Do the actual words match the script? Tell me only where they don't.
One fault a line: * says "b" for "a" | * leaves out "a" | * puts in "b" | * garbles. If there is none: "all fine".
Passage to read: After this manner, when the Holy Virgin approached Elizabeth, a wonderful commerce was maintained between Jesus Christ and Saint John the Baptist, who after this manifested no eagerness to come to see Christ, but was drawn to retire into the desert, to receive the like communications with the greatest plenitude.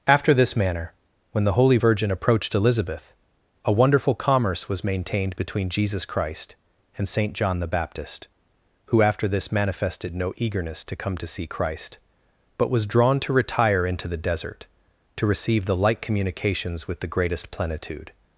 all fine